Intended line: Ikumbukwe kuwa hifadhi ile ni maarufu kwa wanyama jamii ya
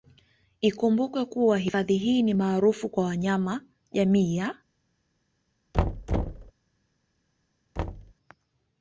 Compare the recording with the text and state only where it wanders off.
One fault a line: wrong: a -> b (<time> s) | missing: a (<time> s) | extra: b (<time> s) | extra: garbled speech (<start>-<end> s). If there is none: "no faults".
wrong: ile -> hii (2.0 s)